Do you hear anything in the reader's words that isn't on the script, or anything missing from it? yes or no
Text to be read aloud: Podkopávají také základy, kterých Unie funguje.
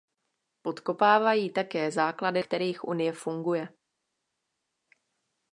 no